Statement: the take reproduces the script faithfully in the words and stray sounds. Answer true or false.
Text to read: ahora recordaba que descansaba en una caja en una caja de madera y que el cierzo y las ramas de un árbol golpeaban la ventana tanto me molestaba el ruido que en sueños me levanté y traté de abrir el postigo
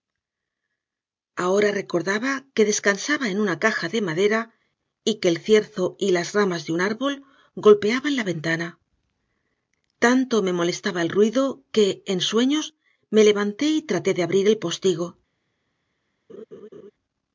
false